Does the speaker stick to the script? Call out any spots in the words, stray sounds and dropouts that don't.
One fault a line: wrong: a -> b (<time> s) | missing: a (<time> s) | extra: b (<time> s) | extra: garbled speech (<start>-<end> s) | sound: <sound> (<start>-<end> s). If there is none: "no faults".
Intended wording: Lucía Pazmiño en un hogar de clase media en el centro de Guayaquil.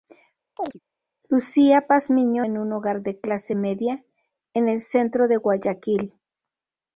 sound: chirp (0.6-0.8 s)